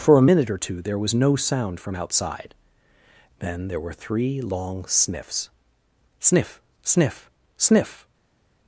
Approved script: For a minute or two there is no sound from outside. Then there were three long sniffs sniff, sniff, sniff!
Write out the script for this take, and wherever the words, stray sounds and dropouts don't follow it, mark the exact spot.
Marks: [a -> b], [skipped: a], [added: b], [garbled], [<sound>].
For a minute or two there [is -> was] no sound from outside. Then there were three long sniffs sniff, sniff, sniff!